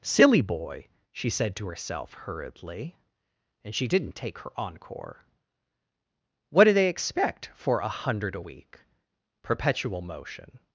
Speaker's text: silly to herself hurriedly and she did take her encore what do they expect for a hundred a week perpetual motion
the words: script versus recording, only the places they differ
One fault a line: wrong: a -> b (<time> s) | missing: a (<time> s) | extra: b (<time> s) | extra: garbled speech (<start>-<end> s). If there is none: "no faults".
extra: boy she said (0.4 s)
wrong: did -> didn't (3.9 s)